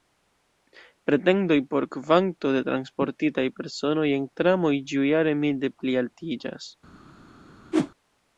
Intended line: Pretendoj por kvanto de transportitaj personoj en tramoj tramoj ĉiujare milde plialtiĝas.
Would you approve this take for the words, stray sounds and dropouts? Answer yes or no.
no